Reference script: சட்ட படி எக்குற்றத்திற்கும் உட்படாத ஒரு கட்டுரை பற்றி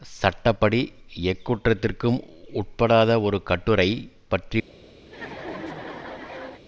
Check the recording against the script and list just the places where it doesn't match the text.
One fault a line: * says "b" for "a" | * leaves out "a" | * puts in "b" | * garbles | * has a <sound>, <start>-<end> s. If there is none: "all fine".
* has a laugh, 5.1-6.6 s